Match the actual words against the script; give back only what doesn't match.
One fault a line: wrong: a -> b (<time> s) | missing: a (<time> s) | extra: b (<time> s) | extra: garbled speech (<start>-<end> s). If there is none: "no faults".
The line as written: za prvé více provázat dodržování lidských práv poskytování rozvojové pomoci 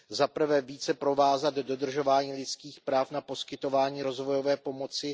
extra: na (3.1 s)